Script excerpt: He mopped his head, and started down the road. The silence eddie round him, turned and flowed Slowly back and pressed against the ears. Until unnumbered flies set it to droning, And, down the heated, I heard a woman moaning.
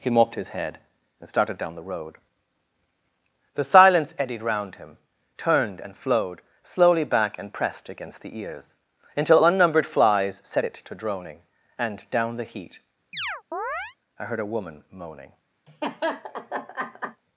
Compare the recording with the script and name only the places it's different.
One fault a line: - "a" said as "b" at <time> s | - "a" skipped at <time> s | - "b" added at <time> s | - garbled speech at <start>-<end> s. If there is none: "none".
- "eddie" said as "eddied" at 4.2 s
- "heated" said as "heat" at 12.4 s